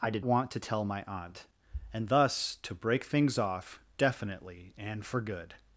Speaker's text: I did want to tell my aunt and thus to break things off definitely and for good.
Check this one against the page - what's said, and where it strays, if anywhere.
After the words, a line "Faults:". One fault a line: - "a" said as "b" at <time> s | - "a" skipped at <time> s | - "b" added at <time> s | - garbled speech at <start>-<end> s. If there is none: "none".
I did want to tell my aunt and thus to break things off definitely and for good.
Faults:
none